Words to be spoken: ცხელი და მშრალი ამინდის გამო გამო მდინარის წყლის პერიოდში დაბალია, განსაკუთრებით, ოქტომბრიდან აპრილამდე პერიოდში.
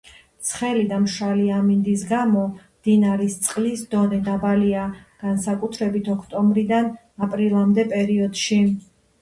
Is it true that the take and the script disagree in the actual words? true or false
true